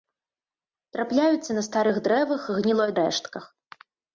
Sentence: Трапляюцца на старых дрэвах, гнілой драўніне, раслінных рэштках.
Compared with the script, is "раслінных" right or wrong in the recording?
wrong